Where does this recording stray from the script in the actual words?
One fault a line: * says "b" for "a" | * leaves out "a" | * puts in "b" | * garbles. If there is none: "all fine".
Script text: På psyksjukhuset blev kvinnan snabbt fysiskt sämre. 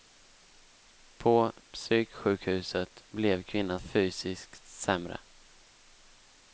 * leaves out "snabbt"